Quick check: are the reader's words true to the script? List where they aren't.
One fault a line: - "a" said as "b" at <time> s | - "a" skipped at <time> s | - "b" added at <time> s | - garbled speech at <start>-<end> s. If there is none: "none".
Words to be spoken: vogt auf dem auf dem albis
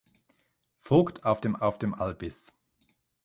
none